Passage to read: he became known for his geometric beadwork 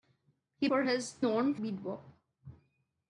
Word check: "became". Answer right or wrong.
wrong